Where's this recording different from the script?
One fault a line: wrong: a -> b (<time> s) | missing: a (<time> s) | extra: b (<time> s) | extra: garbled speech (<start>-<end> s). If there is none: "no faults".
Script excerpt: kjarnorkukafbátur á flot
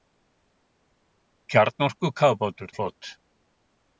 no faults